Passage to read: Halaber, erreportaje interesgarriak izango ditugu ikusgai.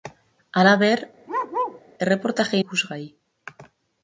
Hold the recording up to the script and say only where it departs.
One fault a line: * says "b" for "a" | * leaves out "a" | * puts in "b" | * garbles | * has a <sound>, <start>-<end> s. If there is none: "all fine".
* has a bark, 1.3-1.8 s
* leaves out "interesgarriak izango ditugu"